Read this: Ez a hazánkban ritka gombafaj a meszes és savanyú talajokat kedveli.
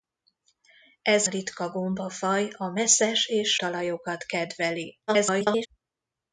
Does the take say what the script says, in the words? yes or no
no